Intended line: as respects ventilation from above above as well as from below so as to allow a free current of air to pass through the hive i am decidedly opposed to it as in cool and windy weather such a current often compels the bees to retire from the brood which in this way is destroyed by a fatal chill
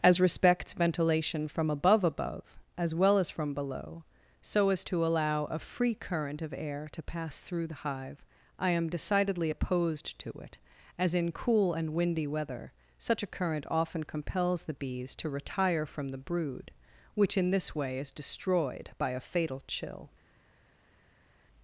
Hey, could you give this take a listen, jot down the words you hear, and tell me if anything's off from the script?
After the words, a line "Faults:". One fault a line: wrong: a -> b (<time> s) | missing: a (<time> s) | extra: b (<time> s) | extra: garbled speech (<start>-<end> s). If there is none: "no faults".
as respects ventilation from above above as well as from below so as to allow a free current of air to pass through the hive i am decidedly opposed to it as in cool and windy weather such a current often compels the bees to retire from the brood which in this way is destroyed by a fatal chill
Faults:
no faults